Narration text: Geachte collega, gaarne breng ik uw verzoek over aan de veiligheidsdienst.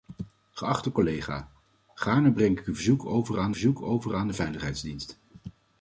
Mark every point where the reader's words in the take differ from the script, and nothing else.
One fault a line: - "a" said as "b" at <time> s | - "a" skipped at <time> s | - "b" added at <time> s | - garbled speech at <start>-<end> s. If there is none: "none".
- "verzoek over aan" added at 3.5 s